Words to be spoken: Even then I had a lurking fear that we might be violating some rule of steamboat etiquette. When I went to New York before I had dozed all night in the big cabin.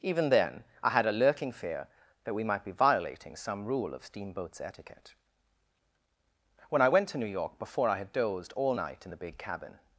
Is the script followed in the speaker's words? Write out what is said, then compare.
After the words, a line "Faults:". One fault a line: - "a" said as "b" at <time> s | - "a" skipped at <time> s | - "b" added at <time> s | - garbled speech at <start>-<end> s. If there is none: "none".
Even then I had a lurking fear that we might be violating some rule of steamboats etiquette. When I went to New York before I had dozed all night in the big cabin.
Faults:
- "steamboat" said as "steamboats" at 4.0 s